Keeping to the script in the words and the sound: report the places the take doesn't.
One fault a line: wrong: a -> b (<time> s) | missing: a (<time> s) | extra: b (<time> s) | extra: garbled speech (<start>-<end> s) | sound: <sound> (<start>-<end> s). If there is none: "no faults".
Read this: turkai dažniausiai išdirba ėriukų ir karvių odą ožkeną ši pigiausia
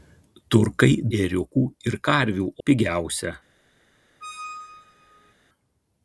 missing: dažniausiai išdirba (0.9 s)
missing: odą ožkeną ši (2.5 s)
sound: squeak (4.2-5.3 s)